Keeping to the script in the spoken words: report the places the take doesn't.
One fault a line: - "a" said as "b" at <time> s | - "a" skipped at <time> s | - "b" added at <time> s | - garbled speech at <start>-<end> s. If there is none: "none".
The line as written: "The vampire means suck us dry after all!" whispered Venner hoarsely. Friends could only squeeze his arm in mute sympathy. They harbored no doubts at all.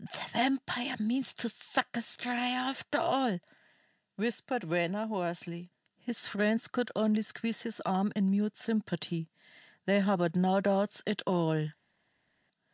- "to" added at 1.3 s
- "His" added at 6.0 s